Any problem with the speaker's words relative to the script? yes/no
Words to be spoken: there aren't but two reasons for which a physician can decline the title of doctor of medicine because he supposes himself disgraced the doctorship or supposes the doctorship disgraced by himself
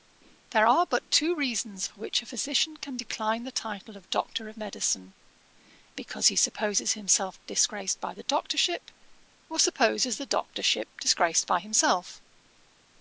yes